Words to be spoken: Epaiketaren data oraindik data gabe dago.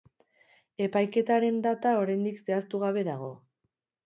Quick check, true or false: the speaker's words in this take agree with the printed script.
false